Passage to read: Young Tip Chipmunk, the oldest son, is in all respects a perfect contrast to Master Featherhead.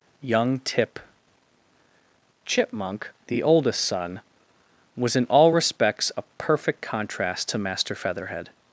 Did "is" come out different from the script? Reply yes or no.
yes